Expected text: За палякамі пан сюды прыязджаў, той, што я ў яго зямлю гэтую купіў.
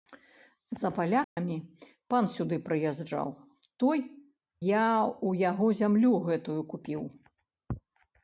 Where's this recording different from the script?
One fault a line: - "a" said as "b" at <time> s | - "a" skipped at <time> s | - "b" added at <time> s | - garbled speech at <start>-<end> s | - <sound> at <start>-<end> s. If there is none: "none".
- dropout at 1.2-1.4 s
- "што" skipped at 4.0 s